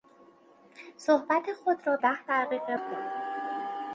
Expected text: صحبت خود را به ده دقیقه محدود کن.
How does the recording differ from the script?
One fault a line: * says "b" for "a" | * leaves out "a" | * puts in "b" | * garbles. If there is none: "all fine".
* leaves out "به"
* leaves out "محدود"